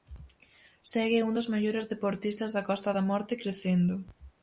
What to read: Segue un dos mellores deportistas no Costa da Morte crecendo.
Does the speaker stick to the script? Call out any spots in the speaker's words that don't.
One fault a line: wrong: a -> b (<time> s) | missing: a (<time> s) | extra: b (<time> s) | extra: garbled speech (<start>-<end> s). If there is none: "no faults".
wrong: no -> da (2.6 s)